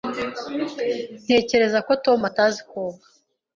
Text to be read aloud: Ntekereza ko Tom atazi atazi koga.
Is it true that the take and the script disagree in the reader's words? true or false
true